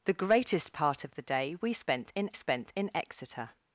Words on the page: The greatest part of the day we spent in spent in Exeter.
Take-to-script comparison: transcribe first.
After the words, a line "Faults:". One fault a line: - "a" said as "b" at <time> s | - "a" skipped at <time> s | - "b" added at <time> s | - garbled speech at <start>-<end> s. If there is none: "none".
The greatest part of the day we spent in spent in Exeter.
Faults:
none